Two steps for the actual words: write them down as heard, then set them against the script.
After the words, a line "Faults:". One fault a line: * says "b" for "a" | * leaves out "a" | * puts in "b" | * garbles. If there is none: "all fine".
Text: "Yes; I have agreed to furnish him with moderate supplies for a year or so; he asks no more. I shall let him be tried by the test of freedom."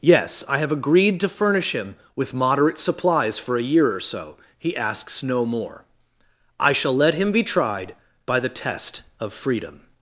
"Yes; I have agreed to furnish him with moderate supplies for a year or so; he asks no more. I shall let him be tried by the test of freedom."
Faults:
all fine